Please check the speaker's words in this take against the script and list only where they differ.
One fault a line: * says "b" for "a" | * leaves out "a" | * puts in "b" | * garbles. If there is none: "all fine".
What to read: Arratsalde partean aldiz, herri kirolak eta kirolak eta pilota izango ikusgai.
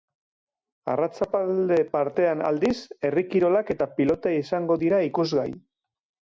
* leaves out "kirolak eta"
* puts in "dira"